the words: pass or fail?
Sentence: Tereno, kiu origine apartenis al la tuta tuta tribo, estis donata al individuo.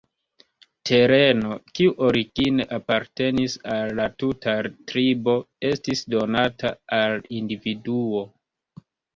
fail